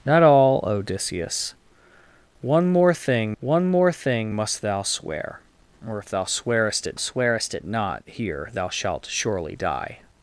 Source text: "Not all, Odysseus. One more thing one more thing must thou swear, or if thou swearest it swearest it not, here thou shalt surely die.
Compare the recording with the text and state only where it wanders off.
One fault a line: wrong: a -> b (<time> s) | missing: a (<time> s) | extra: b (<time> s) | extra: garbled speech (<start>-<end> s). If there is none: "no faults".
no faults